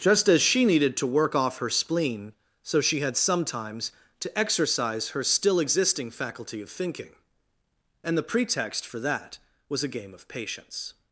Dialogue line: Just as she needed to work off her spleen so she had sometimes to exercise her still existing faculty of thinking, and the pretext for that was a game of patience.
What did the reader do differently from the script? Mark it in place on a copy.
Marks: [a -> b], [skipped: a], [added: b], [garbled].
Just as she needed to work off her spleen so she had sometimes to exercise her still existing faculty of thinking, and the pretext for that was a game of patience.